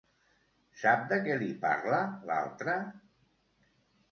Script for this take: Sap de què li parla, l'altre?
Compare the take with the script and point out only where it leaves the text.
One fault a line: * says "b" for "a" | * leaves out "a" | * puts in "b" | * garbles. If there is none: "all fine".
all fine